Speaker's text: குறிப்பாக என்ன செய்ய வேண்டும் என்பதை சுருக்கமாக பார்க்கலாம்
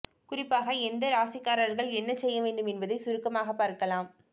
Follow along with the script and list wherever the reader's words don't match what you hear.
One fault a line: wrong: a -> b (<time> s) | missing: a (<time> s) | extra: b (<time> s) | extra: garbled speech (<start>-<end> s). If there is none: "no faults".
extra: எந்த ராசிக்காரர்கள் (0.8 s)